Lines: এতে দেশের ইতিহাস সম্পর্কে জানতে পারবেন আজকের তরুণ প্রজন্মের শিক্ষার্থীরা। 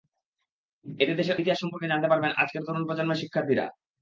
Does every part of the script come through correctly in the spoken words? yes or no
yes